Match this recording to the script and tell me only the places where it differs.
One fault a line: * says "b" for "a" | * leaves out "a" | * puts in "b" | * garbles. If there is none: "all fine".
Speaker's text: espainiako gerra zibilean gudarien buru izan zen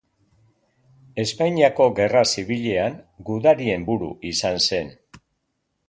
all fine